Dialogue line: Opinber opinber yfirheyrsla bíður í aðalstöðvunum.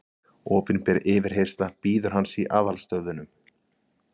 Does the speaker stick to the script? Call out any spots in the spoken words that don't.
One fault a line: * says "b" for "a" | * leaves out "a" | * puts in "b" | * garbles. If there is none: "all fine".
* leaves out "opinber"
* puts in "hans"